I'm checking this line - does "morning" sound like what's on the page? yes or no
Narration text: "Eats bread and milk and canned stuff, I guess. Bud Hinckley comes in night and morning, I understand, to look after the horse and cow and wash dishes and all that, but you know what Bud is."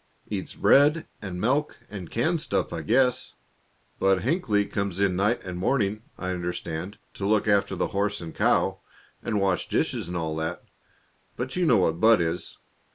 yes